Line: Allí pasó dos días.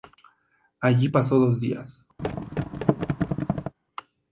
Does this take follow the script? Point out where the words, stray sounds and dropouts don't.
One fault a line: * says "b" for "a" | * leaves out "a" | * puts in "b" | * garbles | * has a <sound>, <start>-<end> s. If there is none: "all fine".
* has a thud, 2.2-3.7 s